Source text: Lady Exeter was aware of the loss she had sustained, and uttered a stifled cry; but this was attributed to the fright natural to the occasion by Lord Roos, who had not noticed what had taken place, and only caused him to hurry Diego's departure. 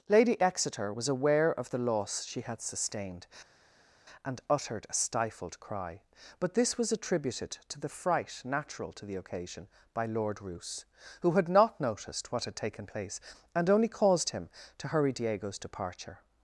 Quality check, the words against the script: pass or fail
pass